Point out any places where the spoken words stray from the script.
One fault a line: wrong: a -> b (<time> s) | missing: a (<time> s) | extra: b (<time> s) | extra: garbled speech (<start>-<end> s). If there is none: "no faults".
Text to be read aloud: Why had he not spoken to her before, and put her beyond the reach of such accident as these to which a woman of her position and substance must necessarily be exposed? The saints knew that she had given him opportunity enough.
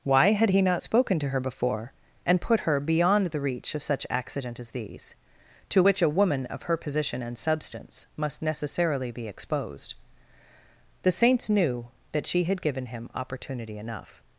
no faults